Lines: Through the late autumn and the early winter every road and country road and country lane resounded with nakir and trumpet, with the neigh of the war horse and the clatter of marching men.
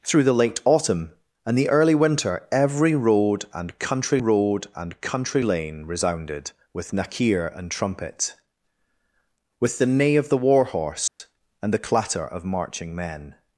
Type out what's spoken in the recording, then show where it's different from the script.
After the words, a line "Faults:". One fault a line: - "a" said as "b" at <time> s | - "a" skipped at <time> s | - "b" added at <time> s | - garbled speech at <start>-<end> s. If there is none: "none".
Through the late autumn and the early winter every road and country road and country lane resounded with nakir and trumpet, with the neigh of the war horse and the clatter of marching men.
Faults:
none